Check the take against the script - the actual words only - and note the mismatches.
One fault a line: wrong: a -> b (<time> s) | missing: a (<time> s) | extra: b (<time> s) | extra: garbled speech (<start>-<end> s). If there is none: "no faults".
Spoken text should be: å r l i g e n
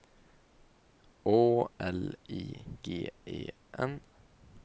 missing: r (1.4 s)